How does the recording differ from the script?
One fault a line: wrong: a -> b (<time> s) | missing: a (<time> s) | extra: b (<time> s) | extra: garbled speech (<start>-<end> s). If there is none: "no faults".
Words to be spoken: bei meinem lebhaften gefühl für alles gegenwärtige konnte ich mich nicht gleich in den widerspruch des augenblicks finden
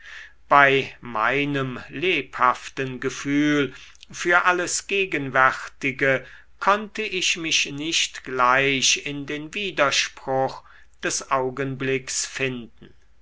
no faults